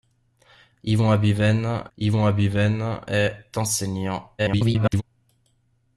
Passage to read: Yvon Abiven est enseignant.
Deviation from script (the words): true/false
true